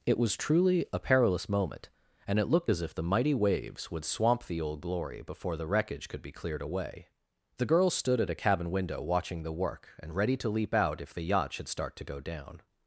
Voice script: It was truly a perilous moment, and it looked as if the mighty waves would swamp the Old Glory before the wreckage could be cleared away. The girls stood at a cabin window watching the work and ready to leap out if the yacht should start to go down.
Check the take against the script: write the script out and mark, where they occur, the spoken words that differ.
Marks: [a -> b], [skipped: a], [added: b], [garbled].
It was truly a perilous moment, and it looked as if the mighty waves would swamp the Old Glory before the wreckage could be cleared away. The girls stood at a cabin window watching the work and ready to leap out if the yacht should start to go down.